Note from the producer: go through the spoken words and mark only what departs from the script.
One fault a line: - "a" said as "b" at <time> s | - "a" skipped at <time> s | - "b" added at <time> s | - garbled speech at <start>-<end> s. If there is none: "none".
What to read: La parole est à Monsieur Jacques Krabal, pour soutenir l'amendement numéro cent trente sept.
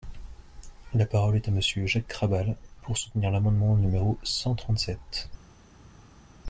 none